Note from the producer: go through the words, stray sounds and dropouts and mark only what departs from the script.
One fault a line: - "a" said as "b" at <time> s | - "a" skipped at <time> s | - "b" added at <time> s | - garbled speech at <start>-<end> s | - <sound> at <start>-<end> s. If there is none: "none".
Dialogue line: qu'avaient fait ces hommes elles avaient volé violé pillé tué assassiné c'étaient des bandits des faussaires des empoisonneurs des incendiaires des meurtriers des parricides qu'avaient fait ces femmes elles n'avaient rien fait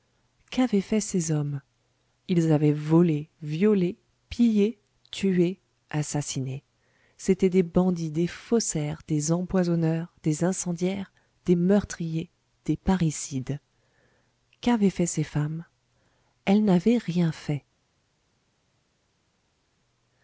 - "elles" said as "ils" at 2.3 s